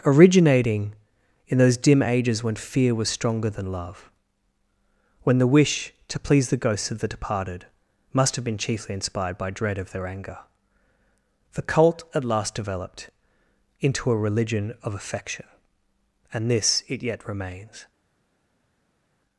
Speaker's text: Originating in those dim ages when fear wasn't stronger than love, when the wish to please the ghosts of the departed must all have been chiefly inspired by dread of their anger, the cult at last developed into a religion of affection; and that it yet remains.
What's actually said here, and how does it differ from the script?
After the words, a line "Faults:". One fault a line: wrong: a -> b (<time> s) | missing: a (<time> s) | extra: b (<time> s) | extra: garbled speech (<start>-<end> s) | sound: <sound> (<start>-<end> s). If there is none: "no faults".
Originating in those dim ages when fear was stronger than love, when the wish to please the ghosts of the departed must have been chiefly inspired by dread of their anger, the cult at last developed into a religion of affection; and this it yet remains.
Faults:
wrong: wasn't -> was (2.9 s)
missing: all (8.4 s)
wrong: that -> this (16.5 s)